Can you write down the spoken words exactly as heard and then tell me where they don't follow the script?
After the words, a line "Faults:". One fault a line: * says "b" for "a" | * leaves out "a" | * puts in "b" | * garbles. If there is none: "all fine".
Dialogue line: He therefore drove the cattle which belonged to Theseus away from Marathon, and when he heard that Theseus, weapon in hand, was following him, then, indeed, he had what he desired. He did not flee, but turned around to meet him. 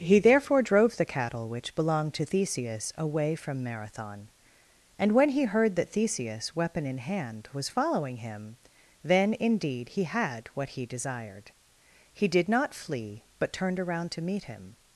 He therefore drove the cattle which belonged to Theseus away from Marathon, and when he heard that Theseus, weapon in hand, was following him, then, indeed, he had what he desired. He did not flee, but turned around to meet him.
Faults:
all fine